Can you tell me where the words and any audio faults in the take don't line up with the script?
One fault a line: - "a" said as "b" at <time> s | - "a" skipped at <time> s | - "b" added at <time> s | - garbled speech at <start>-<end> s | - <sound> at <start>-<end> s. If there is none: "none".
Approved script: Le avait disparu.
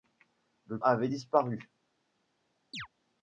- chirp at 2.7-2.9 s